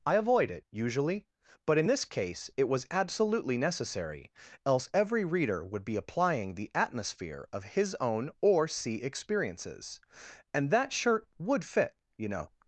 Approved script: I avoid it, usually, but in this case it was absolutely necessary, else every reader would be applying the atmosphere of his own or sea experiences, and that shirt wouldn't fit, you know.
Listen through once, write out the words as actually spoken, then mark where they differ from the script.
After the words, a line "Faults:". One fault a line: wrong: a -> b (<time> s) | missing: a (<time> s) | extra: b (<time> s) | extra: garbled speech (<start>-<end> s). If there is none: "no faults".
I avoid it, usually, but in this case it was absolutely necessary, else every reader would be applying the atmosphere of his own or sea experiences, and that shirt would fit, you know.
Faults:
wrong: wouldn't -> would (11.4 s)